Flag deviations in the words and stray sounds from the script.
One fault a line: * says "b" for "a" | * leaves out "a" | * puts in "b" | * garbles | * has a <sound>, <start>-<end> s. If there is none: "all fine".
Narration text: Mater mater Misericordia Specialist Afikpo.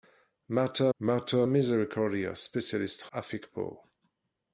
all fine